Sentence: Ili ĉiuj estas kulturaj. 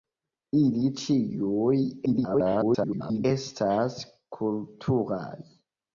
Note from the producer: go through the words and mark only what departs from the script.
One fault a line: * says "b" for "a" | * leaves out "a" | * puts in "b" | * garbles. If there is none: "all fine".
* garbles